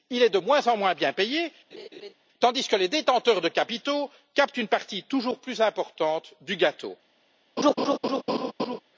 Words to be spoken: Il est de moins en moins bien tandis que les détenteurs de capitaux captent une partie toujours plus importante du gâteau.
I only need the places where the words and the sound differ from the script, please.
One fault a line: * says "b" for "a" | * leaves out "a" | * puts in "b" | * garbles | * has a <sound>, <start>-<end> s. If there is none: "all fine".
* puts in "payé"
* has a laugh, 1.7-2.1 s
* has a laugh, 7.6-8.8 s